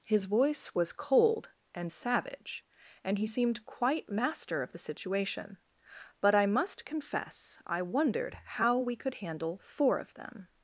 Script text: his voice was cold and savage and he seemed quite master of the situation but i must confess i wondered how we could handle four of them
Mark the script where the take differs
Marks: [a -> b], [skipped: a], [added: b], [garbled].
his voice was cold and savage and he seemed quite master of the situation but i must confess i wondered how we could handle four of them